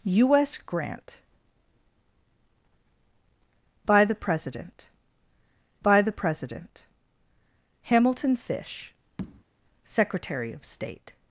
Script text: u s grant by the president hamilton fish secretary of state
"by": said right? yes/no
yes